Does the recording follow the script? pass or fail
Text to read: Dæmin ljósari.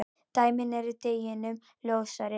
fail